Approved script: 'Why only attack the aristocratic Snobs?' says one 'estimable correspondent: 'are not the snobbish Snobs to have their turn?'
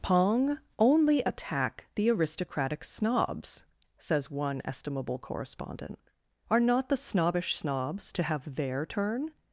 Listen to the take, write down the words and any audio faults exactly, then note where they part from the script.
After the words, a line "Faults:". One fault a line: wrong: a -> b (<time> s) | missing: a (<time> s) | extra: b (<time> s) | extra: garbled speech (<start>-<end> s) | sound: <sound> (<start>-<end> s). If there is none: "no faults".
'Pong only attack the aristocratic Snobs?' says one 'estimable correspondent: 'are not the snobbish Snobs to have their turn?'
Faults:
wrong: Why -> Pong (0.0 s)